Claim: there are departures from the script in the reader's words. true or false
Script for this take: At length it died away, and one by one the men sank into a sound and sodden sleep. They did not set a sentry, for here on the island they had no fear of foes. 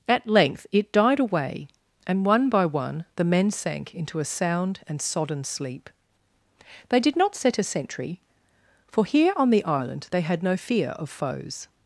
false